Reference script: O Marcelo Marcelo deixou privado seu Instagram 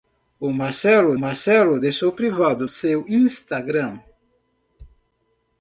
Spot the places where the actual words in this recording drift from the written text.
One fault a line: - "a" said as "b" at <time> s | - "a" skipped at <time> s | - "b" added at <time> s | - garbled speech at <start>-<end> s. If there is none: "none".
none